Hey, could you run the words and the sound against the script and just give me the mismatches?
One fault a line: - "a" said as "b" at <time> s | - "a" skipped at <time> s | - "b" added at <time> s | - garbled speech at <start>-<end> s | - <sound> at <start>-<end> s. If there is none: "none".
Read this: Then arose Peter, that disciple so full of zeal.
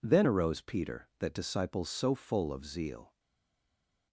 none